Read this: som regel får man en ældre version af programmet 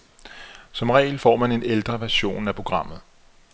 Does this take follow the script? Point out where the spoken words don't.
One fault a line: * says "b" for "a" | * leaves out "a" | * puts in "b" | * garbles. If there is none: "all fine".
all fine